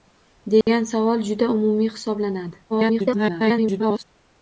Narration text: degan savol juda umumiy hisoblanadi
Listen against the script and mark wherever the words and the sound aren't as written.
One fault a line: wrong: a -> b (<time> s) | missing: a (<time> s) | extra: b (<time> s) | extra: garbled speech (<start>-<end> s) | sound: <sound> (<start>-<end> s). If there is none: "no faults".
sound: dropout (0.6-0.7 s)
extra: garbled speech (2.7-4.0 s)